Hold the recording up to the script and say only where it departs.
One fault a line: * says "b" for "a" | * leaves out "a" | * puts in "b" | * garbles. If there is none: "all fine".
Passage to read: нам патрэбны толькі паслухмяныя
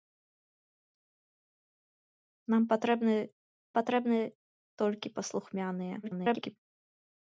* puts in "патрэбны"
* garbles